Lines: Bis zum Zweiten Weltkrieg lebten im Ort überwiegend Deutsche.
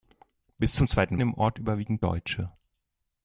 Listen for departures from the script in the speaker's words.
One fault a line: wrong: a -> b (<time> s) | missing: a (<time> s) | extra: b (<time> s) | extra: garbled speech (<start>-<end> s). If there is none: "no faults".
missing: Weltkrieg lebten (1.2 s)